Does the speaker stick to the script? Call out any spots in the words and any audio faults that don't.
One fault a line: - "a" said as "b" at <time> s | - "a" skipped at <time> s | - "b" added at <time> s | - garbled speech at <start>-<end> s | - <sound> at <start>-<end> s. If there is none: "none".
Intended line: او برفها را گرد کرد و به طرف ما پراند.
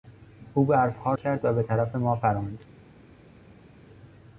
- "را گرد" skipped at 1.1 s